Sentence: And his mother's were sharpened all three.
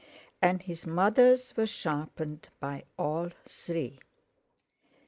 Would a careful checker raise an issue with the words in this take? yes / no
yes